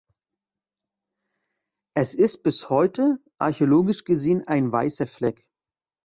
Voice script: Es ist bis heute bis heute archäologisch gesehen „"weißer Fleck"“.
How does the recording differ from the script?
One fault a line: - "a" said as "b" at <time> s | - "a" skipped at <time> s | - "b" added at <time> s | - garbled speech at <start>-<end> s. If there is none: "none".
- "bis heute" skipped at 3.2 s
- "ein" added at 4.5 s